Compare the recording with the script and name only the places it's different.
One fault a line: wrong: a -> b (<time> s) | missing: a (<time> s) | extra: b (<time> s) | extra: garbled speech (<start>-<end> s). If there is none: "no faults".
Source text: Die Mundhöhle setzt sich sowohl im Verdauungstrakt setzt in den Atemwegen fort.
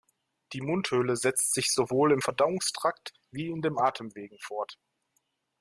wrong: setzt -> wie (3.3 s)